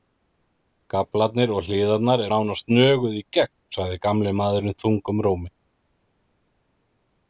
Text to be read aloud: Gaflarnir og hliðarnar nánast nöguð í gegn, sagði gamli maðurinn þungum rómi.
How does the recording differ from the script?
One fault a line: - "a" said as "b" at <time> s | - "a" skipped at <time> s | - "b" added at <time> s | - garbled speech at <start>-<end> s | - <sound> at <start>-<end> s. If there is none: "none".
none